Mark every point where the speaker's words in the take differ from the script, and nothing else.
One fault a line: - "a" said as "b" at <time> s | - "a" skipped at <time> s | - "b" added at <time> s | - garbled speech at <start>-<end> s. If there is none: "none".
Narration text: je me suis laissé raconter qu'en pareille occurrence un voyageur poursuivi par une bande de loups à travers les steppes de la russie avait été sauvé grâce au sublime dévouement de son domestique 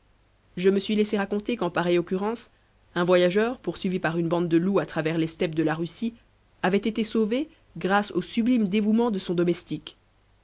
none